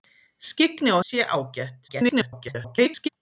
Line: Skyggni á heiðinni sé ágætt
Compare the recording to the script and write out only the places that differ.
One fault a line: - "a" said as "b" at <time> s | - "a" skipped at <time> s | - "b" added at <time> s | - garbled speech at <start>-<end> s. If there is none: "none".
- "heiðinni" skipped at 1.0 s
- garbled speech at 1.9-3.1 s